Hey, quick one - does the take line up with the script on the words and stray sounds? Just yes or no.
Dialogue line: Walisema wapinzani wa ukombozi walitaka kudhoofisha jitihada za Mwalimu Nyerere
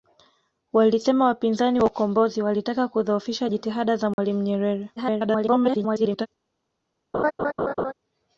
no